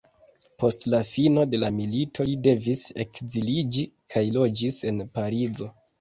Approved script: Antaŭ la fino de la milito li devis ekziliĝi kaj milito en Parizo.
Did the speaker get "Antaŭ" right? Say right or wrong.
wrong